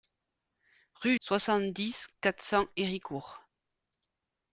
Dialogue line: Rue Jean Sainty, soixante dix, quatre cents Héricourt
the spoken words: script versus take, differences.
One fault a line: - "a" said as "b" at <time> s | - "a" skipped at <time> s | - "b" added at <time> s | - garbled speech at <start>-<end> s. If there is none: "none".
- "Jean Sainty" skipped at 1.1 s